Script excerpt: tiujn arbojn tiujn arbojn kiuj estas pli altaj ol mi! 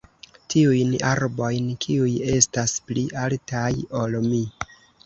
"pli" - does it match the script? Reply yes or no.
yes